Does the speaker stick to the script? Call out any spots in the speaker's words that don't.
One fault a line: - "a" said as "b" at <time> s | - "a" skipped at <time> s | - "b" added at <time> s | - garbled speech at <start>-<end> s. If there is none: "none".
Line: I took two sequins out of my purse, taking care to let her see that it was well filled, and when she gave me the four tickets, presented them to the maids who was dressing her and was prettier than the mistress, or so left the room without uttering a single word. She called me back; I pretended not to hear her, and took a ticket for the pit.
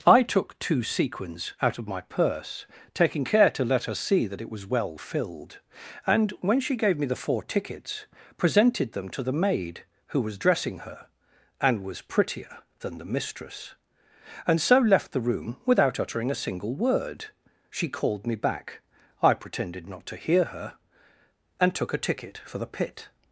- "maids" said as "maid" at 9.3 s
- "or" said as "and" at 14.5 s